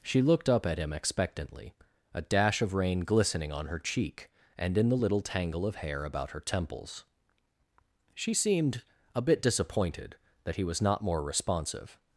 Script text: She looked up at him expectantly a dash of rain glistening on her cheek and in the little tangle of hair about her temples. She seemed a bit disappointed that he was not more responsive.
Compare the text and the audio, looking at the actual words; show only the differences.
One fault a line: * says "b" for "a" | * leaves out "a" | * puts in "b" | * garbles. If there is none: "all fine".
all fine